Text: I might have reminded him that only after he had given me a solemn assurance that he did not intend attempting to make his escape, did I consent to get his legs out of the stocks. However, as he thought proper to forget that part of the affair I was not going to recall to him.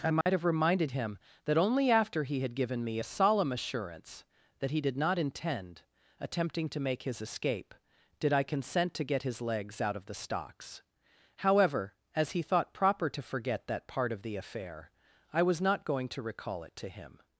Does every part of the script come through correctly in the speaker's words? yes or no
no